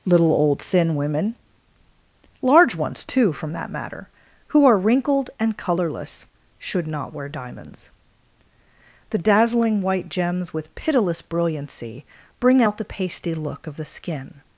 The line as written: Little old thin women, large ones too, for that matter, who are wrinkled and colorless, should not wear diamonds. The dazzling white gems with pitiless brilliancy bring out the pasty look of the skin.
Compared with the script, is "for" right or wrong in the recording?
wrong